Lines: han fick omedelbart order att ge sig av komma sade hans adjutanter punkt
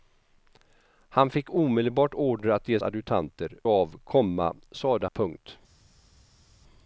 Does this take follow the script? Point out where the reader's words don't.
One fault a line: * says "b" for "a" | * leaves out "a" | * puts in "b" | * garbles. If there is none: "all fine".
* says "adjutanter" for "sig"
* leaves out "hans adjutanter"